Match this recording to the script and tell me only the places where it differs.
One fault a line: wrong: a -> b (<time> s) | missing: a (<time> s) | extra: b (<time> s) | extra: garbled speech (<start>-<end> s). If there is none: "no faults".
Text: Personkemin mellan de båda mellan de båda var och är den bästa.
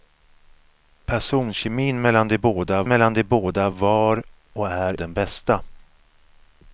no faults